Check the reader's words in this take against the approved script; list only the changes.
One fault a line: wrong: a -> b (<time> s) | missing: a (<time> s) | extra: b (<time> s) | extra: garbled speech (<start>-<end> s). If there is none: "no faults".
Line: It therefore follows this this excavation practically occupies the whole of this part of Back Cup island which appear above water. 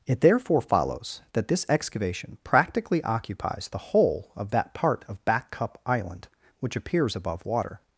wrong: this -> that (1.3 s)
wrong: this -> that (4.5 s)
wrong: appear -> appears (6.8 s)